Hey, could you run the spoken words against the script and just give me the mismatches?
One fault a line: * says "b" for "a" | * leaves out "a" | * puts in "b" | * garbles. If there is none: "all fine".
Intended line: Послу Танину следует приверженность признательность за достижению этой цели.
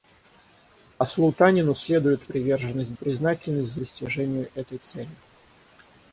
all fine